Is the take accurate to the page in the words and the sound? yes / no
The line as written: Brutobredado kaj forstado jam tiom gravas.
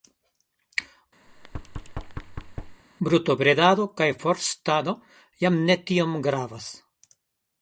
no